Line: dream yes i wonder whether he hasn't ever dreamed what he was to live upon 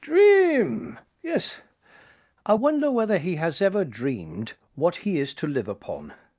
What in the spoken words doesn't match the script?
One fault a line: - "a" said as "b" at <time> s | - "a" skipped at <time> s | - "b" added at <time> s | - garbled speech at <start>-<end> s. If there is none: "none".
- "hasn't" said as "has" at 3.4 s
- "was" said as "is" at 5.2 s